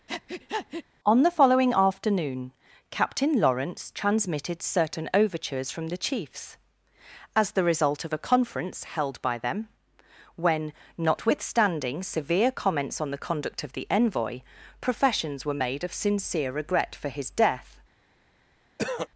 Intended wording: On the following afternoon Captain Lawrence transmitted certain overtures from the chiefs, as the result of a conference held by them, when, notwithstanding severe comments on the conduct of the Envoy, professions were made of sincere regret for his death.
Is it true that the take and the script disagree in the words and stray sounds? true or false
true